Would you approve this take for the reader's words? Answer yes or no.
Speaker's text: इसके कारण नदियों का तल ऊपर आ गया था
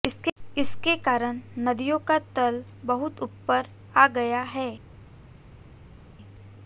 no